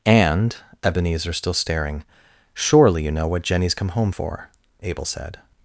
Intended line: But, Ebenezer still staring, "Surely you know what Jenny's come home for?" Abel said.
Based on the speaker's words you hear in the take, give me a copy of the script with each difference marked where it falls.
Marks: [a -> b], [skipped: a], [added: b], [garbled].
[But, -> And] Ebenezer still staring, "Surely you know what Jenny's come home for?" Abel said.